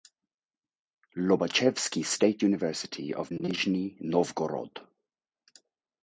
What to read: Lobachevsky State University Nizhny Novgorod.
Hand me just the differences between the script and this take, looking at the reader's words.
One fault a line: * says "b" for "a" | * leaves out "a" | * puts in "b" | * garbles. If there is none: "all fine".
* puts in "of"